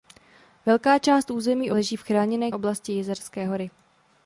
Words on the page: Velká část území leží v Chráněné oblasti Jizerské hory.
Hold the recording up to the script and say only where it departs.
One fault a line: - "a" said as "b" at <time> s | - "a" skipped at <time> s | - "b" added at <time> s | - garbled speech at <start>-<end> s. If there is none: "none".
none